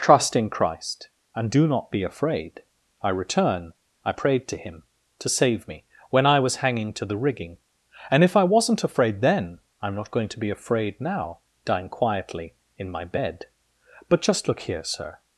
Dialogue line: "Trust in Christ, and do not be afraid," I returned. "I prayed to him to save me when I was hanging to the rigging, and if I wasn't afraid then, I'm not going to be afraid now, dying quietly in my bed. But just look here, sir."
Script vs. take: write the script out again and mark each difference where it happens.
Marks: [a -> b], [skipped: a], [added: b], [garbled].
"Trust in Christ, and do not be afraid," I [returned. -> return] "I prayed to him to save me when I was hanging to the rigging, and if I wasn't afraid then, I'm not going to be afraid now, dying quietly in my bed. But just look here, sir."